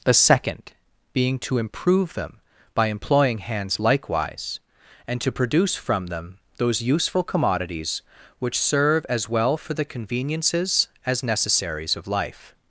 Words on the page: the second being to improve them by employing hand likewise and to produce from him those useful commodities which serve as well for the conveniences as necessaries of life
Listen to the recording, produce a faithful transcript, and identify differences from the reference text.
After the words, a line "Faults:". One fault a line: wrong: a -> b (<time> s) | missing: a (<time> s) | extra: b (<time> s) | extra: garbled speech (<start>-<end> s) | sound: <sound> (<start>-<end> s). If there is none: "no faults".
the second being to improve them by employing hands likewise and to produce from them those useful commodities which serve as well for the conveniences as necessaries of life
Faults:
wrong: hand -> hands (3.4 s)
wrong: him -> them (6.1 s)